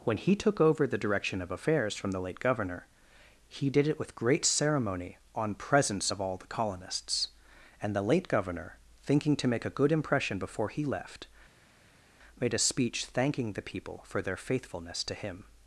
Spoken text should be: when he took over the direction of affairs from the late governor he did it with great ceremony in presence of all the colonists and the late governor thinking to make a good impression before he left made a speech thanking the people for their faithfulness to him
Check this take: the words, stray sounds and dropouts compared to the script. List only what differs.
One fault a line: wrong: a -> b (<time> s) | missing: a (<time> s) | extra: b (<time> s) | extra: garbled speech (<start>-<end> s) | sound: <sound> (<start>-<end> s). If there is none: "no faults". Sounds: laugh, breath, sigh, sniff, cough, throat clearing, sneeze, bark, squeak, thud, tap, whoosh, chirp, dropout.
wrong: in -> on (5.3 s)